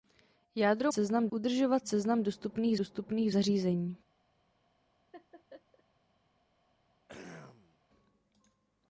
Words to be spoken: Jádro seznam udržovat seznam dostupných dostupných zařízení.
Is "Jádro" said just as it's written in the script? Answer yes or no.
yes